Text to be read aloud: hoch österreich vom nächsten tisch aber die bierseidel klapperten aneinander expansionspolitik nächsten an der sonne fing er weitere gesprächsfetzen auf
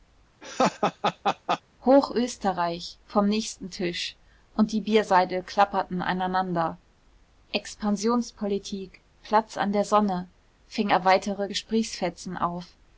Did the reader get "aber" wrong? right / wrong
wrong